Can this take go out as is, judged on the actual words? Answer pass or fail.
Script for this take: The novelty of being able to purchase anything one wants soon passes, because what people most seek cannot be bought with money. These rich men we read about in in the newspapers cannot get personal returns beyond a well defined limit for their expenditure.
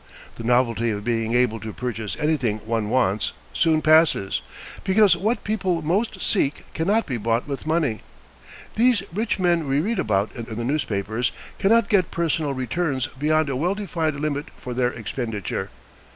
pass